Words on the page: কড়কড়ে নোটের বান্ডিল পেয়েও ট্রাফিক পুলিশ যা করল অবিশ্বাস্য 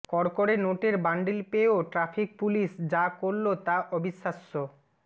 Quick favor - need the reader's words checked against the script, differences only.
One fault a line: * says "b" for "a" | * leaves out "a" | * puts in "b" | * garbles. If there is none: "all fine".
* puts in "তা"